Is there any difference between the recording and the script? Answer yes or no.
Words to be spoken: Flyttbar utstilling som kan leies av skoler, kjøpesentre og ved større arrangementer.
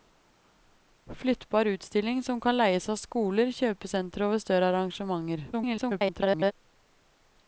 yes